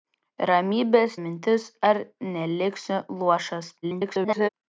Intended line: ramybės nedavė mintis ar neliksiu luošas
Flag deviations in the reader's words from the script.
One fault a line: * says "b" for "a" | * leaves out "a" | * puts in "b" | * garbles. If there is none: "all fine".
* leaves out "nedavė"
* garbles